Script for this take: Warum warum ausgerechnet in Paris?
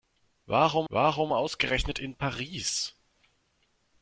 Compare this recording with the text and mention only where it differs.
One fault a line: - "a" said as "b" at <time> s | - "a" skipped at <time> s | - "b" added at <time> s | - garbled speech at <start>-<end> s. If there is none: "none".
none